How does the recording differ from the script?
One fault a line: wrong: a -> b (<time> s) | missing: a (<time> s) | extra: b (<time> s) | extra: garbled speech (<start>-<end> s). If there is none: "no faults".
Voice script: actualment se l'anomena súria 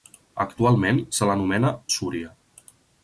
no faults